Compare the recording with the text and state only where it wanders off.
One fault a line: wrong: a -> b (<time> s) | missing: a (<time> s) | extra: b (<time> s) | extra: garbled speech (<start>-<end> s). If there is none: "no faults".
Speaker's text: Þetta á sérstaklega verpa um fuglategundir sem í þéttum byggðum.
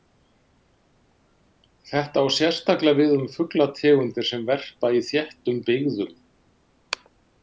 wrong: verpa -> við (3.0 s)
extra: verpa (4.5 s)